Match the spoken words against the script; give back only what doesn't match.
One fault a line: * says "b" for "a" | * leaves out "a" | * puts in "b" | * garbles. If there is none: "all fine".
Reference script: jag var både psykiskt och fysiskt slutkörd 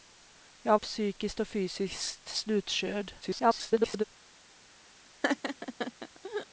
* leaves out "var både"
* garbles